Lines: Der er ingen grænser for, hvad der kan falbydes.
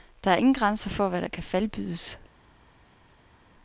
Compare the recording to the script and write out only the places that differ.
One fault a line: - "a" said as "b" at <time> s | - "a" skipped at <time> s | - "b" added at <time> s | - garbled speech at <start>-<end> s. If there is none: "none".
none